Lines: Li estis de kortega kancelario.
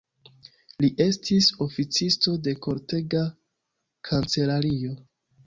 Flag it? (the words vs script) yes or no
yes